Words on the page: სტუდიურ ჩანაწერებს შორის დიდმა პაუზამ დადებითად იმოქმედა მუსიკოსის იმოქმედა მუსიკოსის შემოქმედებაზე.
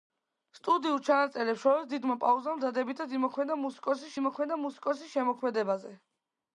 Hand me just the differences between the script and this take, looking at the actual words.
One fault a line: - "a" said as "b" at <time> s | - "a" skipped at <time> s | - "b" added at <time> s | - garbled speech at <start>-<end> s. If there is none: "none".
none